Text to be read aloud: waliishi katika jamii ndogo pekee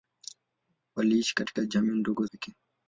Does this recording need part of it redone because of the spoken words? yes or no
no